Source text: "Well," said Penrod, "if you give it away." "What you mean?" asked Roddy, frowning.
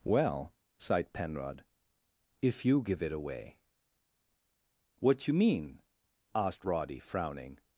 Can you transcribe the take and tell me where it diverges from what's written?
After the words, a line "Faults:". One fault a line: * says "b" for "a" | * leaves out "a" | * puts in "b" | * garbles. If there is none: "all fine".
"Well," sighed Penrod, "if you give it away." "What you mean?" asked Roddy, frowning.
Faults:
* says "sighed" for "said"